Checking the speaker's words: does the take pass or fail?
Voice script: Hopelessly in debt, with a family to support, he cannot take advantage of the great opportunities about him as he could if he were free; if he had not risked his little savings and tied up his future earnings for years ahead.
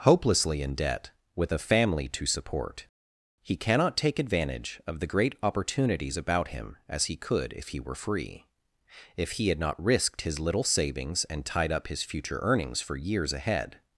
pass